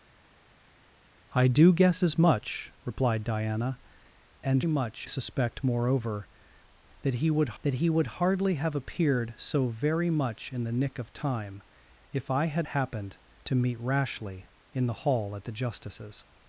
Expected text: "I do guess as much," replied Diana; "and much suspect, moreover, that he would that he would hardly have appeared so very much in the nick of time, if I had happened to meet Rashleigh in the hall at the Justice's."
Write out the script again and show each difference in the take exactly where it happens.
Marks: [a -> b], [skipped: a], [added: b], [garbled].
"I do guess as much," replied Diana; "and much suspect, moreover, that he would that he would hardly have appeared so very much in the nick of time, if I had happened to meet Rashleigh in the hall at the Justice's."